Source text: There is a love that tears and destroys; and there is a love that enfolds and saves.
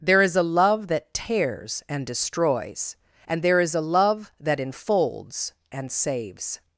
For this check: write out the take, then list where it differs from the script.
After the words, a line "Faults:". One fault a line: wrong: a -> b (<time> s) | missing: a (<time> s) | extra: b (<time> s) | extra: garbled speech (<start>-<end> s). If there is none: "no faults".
There is a love that tears and destroys; and there is a love that enfolds and saves.
Faults:
no faults